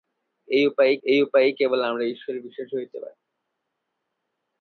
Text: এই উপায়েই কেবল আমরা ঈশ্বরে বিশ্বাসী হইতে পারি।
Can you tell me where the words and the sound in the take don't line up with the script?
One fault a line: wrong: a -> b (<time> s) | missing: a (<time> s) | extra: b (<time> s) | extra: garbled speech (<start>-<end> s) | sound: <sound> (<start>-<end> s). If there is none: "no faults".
extra: এই উপায়েই (1.0 s)